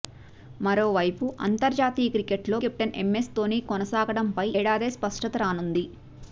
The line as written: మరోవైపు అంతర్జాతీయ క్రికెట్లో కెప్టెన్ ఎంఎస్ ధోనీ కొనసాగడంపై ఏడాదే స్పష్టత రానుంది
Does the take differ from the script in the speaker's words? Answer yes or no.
no